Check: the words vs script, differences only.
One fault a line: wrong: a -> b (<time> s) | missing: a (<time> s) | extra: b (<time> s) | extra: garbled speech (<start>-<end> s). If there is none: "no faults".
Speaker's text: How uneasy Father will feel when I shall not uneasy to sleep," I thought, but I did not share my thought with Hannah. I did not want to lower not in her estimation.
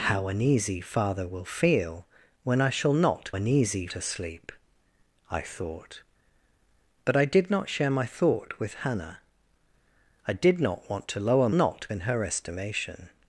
no faults